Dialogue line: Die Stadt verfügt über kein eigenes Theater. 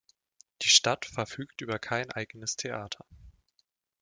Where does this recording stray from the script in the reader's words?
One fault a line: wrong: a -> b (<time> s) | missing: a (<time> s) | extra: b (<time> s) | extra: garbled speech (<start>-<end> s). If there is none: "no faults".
no faults